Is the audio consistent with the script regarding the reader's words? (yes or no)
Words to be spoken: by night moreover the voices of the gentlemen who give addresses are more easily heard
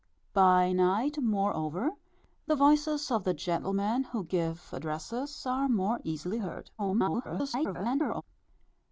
no